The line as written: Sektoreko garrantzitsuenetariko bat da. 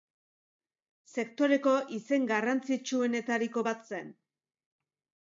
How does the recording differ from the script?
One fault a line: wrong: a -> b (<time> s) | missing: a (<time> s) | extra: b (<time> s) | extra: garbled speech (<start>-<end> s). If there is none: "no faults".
extra: izen (2.0 s)
wrong: da -> zen (3.9 s)